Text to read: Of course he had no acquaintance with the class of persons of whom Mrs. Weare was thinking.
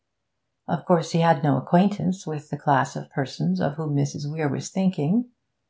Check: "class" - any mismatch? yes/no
no